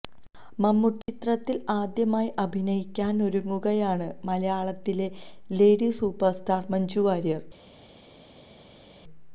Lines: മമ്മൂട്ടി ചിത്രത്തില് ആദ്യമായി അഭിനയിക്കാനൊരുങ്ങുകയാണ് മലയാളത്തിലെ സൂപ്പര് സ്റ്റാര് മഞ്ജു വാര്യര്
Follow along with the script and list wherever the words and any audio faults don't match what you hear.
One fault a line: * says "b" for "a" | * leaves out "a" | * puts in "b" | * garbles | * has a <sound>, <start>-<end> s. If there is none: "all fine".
* puts in "ലേഡി"